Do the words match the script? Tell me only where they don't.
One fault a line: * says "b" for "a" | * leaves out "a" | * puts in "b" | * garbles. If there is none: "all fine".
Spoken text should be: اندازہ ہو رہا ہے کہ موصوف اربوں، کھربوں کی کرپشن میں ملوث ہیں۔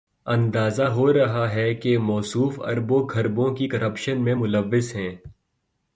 all fine